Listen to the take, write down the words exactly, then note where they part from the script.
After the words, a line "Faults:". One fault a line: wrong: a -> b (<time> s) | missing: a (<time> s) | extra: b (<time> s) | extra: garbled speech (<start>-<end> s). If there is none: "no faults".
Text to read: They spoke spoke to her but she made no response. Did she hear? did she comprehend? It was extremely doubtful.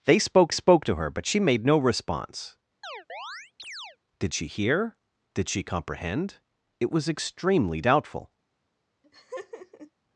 They spoke spoke to her but she made no response. Did she hear? did she comprehend? It was extremely doubtful.
Faults:
no faults